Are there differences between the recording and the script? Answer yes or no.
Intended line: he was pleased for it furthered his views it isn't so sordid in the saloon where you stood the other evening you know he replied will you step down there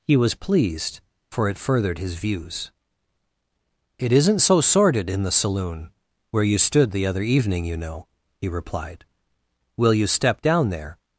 no